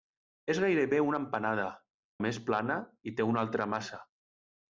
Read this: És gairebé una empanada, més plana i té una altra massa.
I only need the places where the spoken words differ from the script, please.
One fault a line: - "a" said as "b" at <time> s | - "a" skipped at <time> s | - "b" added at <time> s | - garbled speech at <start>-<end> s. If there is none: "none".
none